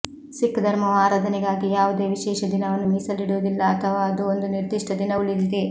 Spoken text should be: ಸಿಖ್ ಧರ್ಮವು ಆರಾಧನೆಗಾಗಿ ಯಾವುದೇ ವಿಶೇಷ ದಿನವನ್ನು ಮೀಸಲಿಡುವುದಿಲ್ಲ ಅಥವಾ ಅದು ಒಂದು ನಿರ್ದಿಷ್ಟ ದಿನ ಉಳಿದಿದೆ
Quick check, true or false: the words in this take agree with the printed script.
true